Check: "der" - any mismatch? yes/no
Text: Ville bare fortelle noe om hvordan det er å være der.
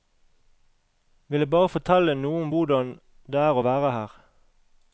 yes